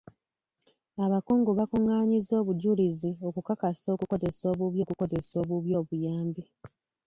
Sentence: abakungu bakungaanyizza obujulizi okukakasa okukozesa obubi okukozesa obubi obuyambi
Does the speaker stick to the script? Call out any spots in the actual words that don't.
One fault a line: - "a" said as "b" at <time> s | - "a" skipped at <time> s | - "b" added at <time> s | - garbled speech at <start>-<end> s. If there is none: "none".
none